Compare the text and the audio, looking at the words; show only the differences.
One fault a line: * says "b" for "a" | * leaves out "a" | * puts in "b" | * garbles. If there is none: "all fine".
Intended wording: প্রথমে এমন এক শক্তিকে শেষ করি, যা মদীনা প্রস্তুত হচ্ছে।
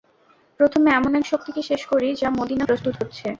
all fine